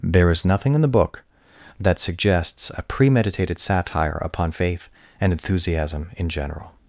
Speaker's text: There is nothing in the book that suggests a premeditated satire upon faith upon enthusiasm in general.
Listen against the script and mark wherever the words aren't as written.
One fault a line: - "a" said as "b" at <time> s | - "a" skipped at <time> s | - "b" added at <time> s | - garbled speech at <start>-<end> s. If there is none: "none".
- "upon" said as "and" at 5.2 s